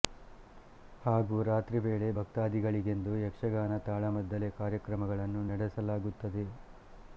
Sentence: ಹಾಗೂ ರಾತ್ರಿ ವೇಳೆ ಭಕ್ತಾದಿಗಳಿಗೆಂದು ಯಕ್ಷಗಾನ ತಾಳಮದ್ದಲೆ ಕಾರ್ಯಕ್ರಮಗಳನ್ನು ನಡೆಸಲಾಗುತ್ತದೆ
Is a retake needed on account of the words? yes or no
no